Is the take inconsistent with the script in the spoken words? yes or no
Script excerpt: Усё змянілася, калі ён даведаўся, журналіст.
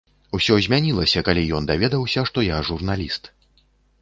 yes